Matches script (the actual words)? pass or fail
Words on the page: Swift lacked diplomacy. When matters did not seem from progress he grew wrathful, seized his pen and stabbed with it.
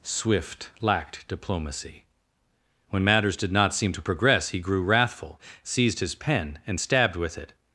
fail